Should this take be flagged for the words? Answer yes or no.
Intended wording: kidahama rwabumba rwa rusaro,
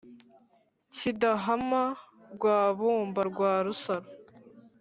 no